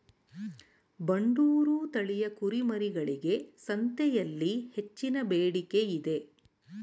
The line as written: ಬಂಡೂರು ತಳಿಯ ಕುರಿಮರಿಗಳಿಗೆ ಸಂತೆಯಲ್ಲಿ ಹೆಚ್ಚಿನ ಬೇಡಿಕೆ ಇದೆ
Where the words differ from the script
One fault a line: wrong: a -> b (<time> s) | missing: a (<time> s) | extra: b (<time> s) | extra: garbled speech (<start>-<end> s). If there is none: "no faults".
no faults